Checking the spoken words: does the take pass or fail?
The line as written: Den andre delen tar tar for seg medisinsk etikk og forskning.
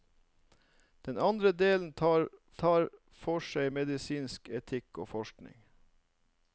pass